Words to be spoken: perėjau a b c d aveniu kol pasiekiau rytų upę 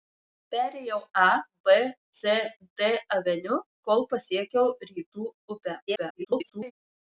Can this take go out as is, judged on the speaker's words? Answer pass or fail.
fail